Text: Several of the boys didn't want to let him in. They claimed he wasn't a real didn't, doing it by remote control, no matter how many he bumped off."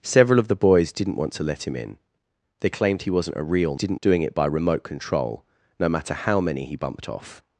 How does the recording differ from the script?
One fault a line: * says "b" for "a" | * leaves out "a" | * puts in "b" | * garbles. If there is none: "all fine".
all fine